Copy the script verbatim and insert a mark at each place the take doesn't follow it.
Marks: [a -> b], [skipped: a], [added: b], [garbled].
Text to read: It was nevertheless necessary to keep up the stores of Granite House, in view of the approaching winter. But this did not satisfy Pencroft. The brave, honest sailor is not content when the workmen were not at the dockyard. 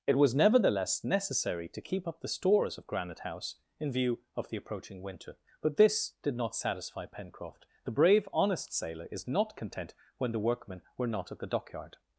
It was nevertheless necessary to keep up the stores of Granite House, in view of the approaching winter. But this did not satisfy Pencroft. The brave, honest sailor is not content when the workmen were not at the dockyard.